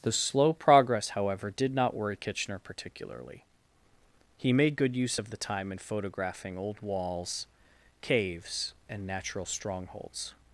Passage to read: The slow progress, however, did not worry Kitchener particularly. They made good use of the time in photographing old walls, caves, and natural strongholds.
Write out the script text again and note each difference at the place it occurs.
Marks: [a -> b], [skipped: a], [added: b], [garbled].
The slow progress, however, did not worry Kitchener particularly. [They -> He] made good use of the time in photographing old walls, caves, and natural strongholds.